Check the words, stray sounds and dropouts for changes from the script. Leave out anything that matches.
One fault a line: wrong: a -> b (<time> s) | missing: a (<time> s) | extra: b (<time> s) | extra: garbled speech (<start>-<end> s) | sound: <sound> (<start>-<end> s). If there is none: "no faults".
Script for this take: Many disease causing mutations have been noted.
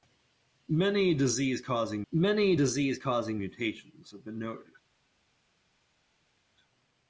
extra: many disease causing (2.1 s)